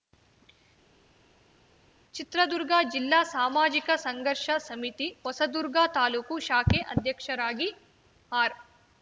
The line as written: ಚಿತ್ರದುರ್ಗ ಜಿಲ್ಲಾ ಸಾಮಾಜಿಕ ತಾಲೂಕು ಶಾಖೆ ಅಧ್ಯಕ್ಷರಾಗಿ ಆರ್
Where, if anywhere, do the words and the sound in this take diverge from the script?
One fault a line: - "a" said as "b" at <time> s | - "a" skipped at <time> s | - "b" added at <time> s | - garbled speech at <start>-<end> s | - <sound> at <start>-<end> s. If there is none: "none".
- "ಸಂಘರ್ಷ ಸಮಿತಿ ಹೊಸದುರ್ಗ" added at 4.0 s